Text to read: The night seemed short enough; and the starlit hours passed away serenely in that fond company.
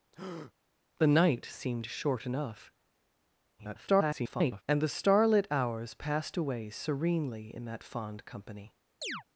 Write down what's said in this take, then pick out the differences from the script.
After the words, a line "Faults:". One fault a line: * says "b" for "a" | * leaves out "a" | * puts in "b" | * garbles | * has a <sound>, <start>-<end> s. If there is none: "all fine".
The night seemed short enough; [garbled] and the starlit hours passed away serenely in that fond company.
Faults:
* has a breath, 0.1-0.5 s
* garbles
* has a chirp, 9.0-9.2 s